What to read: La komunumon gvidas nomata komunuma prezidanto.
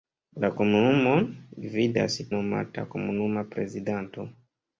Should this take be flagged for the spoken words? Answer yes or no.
no